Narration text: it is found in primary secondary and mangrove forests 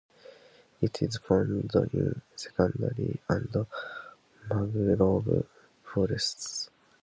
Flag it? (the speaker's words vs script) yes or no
yes